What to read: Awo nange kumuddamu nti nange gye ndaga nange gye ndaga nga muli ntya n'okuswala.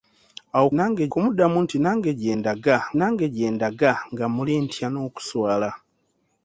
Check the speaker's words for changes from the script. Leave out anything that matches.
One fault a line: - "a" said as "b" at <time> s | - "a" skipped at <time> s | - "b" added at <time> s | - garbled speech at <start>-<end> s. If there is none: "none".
none